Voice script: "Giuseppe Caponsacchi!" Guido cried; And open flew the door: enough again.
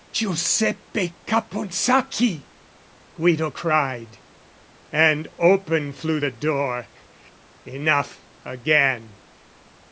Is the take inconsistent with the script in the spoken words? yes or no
no